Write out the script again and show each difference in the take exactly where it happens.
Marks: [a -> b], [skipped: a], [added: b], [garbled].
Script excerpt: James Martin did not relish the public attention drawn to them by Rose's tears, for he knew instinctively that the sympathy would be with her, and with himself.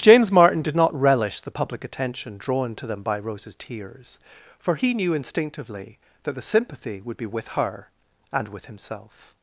James Martin did not relish the public attention drawn to them by Rose's tears, for he knew instinctively that the sympathy would be with her, and with himself.